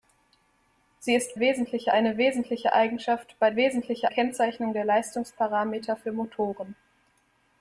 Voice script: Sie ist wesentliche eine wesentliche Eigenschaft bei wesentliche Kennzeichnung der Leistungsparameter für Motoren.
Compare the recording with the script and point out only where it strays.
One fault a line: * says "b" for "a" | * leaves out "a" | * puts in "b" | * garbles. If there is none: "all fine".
all fine